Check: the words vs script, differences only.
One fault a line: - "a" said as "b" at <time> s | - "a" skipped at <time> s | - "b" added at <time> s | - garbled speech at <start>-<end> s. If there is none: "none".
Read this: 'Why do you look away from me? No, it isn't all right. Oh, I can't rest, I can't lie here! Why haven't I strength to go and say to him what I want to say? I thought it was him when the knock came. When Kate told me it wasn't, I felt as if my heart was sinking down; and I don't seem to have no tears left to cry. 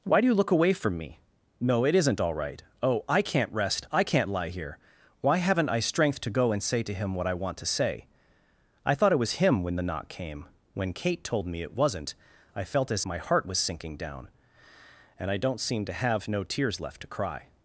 - "if" skipped at 13.1 s